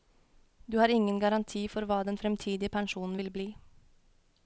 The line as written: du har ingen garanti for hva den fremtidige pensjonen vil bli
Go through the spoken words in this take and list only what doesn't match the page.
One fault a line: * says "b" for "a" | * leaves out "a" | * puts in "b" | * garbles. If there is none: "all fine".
all fine